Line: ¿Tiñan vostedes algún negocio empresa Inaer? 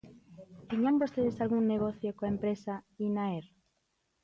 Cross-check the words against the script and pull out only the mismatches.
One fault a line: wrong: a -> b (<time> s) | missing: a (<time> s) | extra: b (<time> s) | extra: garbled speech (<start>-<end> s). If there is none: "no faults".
extra: coa (2.2 s)